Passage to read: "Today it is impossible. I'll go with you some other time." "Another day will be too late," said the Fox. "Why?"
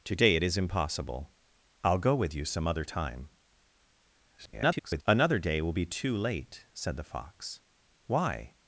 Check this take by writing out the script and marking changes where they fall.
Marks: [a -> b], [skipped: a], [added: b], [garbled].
"Today it is impossible. I'll go with you some other time." [garbled] "Another day will be too late," said the Fox. "Why?"